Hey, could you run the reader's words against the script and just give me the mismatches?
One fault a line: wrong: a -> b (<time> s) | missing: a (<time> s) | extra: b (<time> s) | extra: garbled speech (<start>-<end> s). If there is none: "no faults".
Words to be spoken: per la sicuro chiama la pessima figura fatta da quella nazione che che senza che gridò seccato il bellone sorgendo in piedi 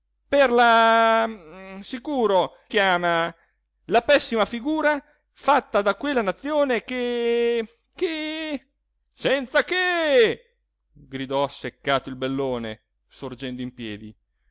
no faults